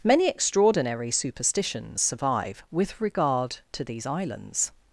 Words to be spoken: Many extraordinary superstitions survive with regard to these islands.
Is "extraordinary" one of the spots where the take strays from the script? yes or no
no